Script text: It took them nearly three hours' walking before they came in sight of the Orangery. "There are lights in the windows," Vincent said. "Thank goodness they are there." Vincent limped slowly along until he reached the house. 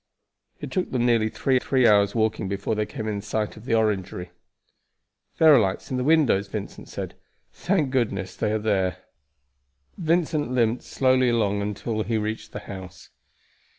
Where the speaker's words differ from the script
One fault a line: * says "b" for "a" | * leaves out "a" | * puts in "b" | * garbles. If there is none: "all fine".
* puts in "three"